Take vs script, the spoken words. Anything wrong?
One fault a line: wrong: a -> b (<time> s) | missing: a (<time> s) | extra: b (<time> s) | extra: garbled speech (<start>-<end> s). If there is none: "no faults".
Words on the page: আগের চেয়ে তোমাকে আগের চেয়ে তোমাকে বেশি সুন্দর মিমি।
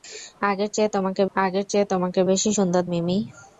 no faults